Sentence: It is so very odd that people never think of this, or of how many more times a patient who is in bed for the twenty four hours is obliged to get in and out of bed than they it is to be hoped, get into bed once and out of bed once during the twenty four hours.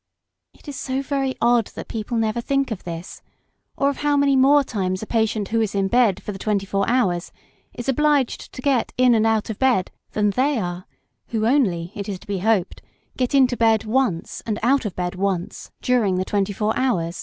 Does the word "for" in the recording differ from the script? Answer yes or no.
no